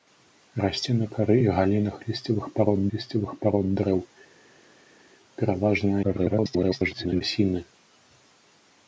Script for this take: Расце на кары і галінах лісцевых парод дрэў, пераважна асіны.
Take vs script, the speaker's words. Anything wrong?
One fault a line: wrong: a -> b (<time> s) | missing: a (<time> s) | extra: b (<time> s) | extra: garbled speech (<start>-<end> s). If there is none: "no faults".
extra: лісцевых парод (3.0 s)
extra: garbled speech (6.0-7.2 s)